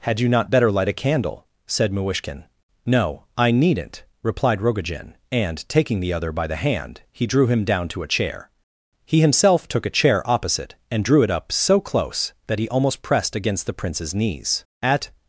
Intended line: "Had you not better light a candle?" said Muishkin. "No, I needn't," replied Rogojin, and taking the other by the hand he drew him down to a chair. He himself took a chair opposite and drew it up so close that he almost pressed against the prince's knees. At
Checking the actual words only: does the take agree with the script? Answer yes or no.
yes